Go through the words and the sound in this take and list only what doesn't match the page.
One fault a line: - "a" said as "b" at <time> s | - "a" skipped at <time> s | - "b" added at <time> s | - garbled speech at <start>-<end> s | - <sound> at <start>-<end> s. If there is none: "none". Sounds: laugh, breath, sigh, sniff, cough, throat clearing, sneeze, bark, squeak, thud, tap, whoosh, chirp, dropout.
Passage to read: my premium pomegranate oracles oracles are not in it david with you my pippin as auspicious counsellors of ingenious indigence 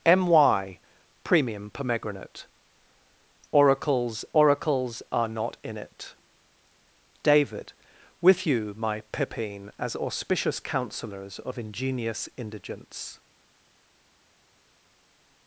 none